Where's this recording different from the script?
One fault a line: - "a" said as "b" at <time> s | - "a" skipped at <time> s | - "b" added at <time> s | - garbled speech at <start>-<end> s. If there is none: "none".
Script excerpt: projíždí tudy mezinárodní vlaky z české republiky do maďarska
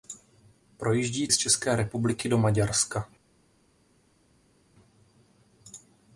- "tudy mezinárodní vlaky" skipped at 1.3 s